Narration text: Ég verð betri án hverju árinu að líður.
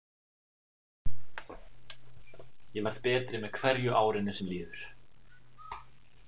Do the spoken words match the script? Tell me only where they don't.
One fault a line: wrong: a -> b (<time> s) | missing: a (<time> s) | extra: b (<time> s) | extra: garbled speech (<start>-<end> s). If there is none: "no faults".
wrong: án -> með (3.5 s)
wrong: að -> sem (4.4 s)